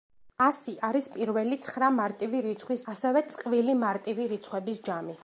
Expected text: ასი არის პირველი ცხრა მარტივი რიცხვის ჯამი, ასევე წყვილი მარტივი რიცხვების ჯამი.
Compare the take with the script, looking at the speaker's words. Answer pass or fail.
fail